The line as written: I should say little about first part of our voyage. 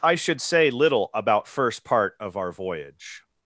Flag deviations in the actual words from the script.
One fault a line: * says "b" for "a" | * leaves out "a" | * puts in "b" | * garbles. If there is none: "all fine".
all fine